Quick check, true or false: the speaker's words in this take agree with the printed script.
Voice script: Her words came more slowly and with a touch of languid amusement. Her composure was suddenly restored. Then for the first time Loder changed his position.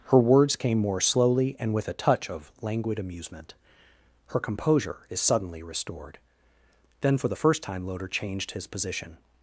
false